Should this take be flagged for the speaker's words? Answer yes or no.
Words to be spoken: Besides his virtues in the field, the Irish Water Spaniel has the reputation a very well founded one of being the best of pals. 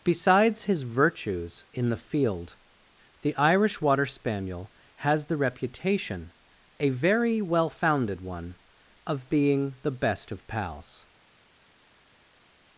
no